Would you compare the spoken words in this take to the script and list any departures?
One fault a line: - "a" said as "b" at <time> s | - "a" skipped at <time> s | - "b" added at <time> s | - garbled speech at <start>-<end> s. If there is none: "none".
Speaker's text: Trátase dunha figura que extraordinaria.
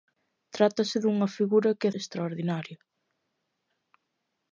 none